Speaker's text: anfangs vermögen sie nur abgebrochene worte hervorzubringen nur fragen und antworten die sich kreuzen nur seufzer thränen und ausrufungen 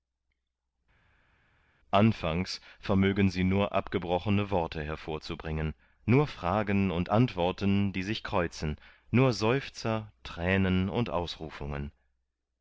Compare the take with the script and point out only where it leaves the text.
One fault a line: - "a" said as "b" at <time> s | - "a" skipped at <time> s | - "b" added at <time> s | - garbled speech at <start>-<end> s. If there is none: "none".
none